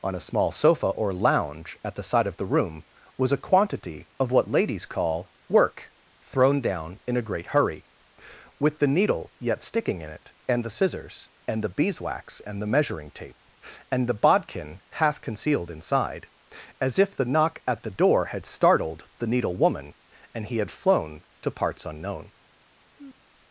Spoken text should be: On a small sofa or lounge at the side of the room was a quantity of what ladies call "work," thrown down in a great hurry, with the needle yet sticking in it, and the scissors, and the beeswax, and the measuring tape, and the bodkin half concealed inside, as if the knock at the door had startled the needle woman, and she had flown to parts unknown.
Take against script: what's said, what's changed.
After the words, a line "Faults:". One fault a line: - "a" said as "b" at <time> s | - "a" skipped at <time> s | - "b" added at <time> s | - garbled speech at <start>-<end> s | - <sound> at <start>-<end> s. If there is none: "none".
On a small sofa or lounge at the side of the room was a quantity of what ladies call "work," thrown down in a great hurry, with the needle yet sticking in it, and the scissors, and the beeswax, and the measuring tape, and the bodkin half concealed inside, as if the knock at the door had startled the needle woman, and he had flown to parts unknown.
Faults:
- "she" said as "he" at 20.5 s
- sigh at 23.0-23.2 s